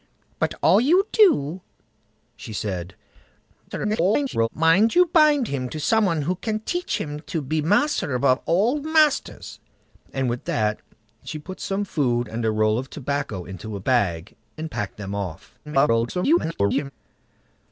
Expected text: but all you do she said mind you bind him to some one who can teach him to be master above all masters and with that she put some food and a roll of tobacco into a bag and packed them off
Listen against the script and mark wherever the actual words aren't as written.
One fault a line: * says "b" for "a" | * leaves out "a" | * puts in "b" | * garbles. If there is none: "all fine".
* garbles
* garbles